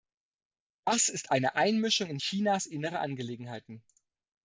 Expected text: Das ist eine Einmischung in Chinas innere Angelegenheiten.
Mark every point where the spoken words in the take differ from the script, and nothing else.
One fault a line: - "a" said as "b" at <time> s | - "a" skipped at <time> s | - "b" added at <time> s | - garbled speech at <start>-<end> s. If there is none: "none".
none